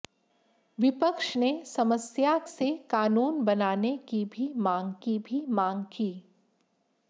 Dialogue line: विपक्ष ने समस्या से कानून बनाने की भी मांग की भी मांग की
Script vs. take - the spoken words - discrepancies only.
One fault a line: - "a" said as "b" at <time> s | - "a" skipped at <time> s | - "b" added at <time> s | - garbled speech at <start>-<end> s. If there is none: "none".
none